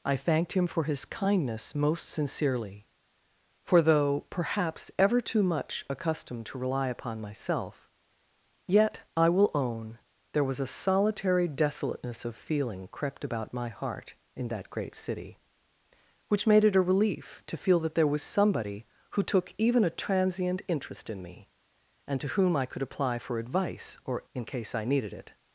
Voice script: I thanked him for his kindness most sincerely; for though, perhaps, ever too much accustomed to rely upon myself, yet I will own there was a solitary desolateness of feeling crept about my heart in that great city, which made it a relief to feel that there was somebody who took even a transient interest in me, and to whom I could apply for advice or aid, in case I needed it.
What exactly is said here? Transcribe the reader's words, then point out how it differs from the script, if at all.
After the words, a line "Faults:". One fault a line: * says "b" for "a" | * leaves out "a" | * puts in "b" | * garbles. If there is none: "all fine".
I thanked him for his kindness most sincerely; for though, perhaps, ever too much accustomed to rely upon myself, yet I will own there was a solitary desolateness of feeling crept about my heart in that great city, which made it a relief to feel that there was somebody who took even a transient interest in me, and to whom I could apply for advice or in case I needed it.
Faults:
* leaves out "aid"